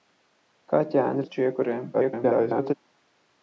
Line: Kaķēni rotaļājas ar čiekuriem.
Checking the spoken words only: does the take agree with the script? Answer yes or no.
no